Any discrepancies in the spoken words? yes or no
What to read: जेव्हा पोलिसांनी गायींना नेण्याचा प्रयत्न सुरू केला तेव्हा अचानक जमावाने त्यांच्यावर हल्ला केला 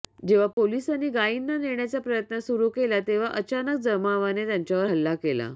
no